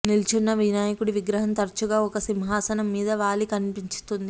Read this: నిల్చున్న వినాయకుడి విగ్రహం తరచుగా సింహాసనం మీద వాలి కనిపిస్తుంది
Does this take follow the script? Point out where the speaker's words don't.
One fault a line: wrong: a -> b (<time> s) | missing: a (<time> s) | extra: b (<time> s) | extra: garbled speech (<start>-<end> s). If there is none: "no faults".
extra: ఒక (2.0 s)